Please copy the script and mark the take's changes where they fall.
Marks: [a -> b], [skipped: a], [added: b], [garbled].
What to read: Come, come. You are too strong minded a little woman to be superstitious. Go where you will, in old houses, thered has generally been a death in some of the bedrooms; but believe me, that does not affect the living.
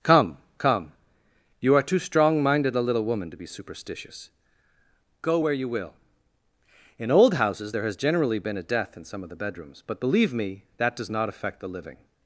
Come, come. You are too strong minded a little woman to be superstitious. Go where you will, in old houses, [thered -> there] has generally been a death in some of the bedrooms; but believe me, that does not affect the living.